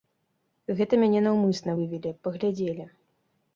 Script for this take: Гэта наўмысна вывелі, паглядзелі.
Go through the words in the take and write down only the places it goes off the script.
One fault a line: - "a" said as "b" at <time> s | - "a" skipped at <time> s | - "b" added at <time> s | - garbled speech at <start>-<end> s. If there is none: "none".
- "мяне" added at 1.0 s